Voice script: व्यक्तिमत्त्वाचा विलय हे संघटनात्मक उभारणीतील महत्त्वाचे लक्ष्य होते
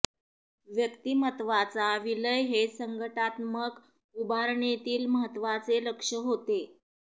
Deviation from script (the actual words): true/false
false